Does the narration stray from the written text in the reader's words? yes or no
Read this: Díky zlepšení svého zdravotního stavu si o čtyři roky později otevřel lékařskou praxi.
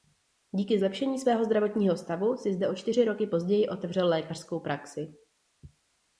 yes